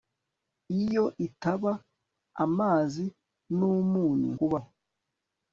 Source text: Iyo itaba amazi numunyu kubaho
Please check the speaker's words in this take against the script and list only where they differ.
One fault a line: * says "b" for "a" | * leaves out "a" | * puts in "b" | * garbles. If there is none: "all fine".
all fine